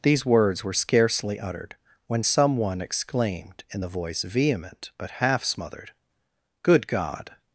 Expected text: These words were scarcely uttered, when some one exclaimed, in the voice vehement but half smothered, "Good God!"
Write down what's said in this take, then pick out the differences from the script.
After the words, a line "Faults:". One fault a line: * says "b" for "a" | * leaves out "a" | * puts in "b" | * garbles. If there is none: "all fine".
These words were scarcely uttered, when some one exclaimed, in the voice vehement but half smothered, "Good God!"
Faults:
all fine